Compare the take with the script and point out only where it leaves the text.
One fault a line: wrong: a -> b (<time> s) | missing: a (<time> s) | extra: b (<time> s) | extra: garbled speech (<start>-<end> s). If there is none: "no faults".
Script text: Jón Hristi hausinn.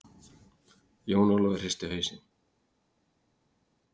extra: Ólafur (1.4 s)